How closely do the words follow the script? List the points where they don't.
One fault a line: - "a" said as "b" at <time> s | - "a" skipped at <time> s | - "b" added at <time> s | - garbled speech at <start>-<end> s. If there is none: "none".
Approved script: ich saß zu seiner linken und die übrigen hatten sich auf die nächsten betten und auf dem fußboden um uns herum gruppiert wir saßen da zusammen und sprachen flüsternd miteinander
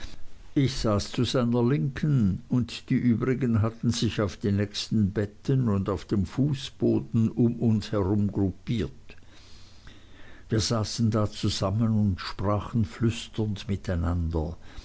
none